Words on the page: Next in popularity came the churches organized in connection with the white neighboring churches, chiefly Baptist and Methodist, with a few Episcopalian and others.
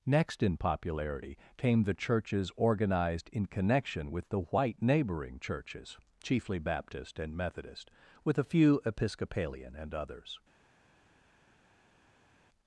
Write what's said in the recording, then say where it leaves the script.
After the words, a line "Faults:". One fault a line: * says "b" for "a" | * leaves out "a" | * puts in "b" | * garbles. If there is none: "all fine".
Next in popularity came the churches organized in connection with the white neighboring churches, chiefly Baptist and Methodist, with a few Episcopalian and others.
Faults:
all fine